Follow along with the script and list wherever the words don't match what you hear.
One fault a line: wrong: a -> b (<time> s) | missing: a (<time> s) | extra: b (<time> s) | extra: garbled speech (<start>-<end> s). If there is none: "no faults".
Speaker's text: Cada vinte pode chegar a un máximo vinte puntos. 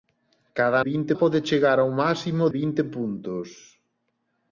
no faults